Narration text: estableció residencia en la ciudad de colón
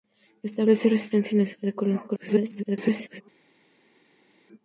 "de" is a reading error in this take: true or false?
false